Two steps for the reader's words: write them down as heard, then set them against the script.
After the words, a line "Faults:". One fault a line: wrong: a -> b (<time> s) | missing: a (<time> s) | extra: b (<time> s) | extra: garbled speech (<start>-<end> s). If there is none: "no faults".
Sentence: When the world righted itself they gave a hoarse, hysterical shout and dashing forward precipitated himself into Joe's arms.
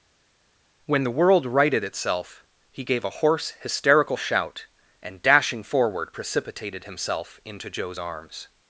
When the world righted itself he gave a hoarse, hysterical shout and dashing forward precipitated himself into Joe's arms.
Faults:
wrong: they -> he (2.7 s)